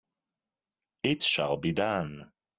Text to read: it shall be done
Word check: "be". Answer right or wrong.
right